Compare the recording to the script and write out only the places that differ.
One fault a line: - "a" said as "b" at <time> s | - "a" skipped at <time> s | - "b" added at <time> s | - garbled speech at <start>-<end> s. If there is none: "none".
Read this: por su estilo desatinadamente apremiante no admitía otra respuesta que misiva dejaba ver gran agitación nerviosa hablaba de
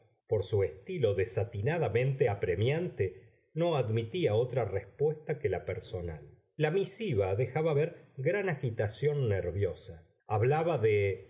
- "la personal la" added at 5.5 s